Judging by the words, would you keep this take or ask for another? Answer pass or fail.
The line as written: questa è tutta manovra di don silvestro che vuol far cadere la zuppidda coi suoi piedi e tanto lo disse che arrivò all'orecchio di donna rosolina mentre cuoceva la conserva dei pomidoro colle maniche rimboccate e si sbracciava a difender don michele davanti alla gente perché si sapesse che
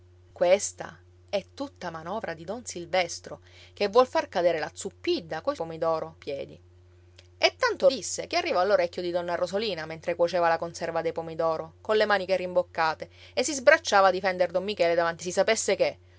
fail